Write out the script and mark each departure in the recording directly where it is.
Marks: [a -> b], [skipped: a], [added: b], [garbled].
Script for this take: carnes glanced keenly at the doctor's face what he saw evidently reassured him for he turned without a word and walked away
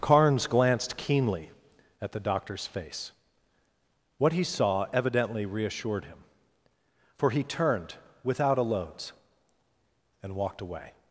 carnes glanced keenly at the doctor's face what he saw evidently reassured him for he turned without a [word -> loads] and walked away